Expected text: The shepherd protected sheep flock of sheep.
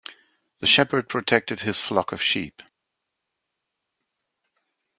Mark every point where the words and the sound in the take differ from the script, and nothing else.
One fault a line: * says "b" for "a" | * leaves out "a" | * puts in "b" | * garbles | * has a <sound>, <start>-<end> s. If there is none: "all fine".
* says "his" for "sheep"